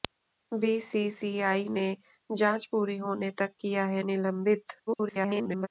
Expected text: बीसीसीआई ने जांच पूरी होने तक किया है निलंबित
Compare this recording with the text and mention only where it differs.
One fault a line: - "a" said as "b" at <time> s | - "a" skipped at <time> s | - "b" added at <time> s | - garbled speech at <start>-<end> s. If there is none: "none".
- garbled speech at 4.9-5.7 s